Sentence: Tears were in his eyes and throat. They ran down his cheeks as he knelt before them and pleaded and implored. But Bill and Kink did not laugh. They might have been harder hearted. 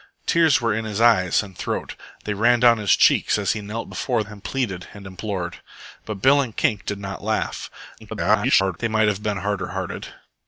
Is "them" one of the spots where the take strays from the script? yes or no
yes